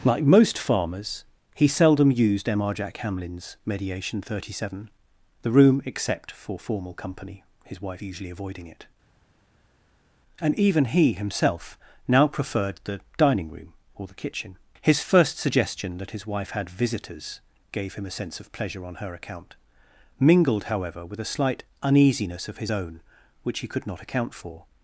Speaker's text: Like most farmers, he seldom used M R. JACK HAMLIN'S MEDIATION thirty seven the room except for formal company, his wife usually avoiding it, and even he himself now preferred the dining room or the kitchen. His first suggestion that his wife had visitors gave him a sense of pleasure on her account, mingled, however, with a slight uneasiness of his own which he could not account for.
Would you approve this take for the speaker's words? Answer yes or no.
yes